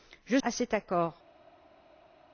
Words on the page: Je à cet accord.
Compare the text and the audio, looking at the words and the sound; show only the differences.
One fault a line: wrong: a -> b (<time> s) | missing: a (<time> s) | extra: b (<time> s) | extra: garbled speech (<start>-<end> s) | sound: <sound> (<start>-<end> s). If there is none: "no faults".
no faults